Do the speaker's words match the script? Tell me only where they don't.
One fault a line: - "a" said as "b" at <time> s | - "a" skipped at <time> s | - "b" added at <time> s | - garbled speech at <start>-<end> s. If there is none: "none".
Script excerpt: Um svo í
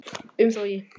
none